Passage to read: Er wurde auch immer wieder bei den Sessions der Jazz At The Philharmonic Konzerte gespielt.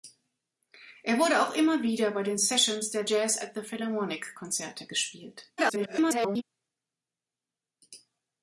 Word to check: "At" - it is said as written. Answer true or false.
true